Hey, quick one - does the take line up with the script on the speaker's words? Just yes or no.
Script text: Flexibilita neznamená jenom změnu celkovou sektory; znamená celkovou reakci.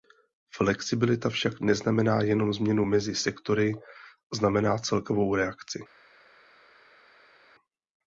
no